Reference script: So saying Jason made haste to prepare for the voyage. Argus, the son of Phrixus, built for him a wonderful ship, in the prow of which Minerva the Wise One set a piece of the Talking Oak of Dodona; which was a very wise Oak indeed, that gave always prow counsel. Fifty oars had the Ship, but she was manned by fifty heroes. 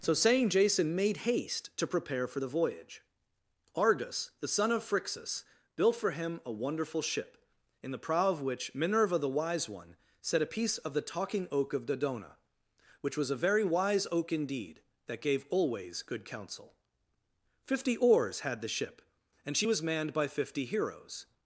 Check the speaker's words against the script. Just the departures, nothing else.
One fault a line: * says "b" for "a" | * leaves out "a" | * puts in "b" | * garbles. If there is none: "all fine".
* says "good" for "prow"
* says "and" for "but"